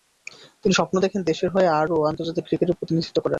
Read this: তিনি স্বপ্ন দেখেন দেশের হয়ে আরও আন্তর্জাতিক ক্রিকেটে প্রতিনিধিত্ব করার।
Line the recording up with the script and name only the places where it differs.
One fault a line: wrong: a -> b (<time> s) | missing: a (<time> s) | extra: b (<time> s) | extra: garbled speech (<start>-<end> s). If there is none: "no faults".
no faults